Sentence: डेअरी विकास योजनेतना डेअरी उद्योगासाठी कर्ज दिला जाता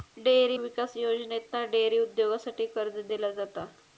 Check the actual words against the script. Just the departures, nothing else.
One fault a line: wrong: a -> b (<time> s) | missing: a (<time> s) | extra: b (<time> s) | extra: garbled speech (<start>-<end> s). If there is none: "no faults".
no faults